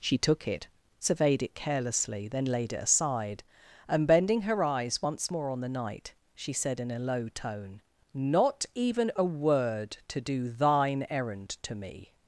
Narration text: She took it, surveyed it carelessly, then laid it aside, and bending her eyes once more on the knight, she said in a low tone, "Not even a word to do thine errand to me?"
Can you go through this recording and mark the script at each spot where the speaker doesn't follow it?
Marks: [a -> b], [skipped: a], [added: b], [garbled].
She took it, surveyed it carelessly, then laid it aside, and bending her eyes once more on the knight, she said in a low tone, "Not even a word to do thine errand to me?"